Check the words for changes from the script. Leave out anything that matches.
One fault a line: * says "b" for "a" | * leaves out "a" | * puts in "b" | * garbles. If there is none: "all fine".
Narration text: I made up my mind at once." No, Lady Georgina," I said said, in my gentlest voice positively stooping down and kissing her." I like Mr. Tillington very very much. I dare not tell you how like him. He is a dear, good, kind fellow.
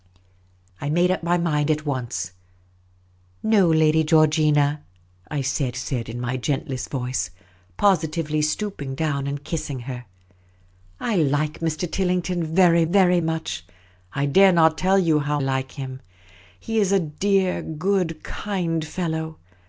all fine